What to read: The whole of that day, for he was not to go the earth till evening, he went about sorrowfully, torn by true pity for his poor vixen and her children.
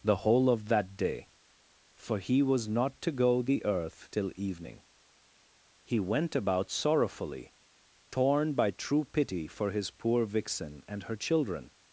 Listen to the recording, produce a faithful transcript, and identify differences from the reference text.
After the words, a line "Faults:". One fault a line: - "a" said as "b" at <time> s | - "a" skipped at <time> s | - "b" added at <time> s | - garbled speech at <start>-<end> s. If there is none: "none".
The whole of that day, for he was not to go the earth till evening, he went about sorrowfully, torn by true pity for his poor vixen and her children.
Faults:
none